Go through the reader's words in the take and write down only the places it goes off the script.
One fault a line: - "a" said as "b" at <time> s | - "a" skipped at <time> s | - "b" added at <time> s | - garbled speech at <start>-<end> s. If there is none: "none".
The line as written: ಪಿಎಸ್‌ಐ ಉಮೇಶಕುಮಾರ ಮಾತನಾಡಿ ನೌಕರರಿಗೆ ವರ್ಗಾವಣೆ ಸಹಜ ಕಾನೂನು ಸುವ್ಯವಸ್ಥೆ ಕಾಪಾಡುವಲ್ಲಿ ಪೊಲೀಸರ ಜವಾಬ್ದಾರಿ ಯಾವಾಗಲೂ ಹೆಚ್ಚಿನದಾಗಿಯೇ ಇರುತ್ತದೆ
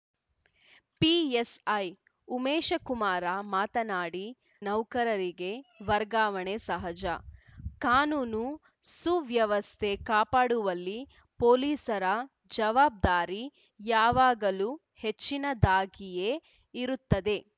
none